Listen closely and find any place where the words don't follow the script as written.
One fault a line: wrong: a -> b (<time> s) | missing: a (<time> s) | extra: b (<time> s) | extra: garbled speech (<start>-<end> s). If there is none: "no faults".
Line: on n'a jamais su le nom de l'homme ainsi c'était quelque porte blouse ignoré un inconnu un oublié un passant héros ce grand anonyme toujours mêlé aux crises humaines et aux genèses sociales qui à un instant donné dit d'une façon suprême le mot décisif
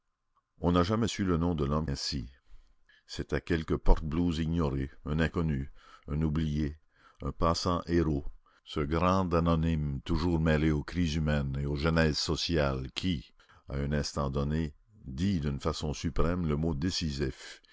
no faults